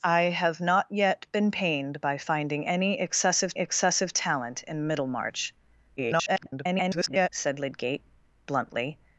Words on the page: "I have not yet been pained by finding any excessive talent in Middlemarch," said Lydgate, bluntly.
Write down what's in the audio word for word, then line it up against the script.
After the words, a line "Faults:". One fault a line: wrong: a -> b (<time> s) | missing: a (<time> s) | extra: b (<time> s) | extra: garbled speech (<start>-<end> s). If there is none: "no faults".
"I have not yet been pained by finding any excessive excessive talent in Middlemarch," [garbled] said Lydgate, bluntly.
Faults:
extra: excessive (3.6 s)
extra: garbled speech (6.0-7.3 s)